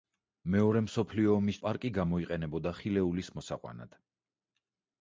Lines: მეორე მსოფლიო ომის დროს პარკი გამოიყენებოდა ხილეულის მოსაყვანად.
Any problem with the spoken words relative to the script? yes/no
yes